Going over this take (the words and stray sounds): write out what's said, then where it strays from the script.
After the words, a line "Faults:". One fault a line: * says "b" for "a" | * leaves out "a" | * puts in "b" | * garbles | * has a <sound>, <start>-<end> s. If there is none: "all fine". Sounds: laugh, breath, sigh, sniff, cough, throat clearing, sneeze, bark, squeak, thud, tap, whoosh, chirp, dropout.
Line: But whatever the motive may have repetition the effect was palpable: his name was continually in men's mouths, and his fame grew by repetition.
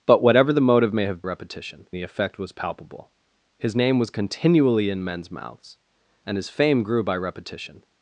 But whatever the motive may have repetition the effect was palpable: his name was continually in men's mouths, and his fame grew by repetition.
Faults:
all fine